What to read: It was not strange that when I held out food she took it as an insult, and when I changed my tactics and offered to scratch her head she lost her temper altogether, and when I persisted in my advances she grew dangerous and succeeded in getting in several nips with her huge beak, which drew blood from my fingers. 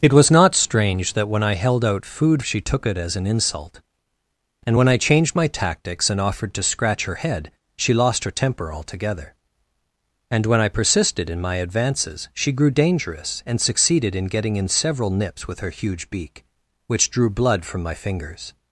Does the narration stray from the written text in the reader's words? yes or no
no